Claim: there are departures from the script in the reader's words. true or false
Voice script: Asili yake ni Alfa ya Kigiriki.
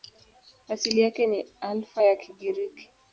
false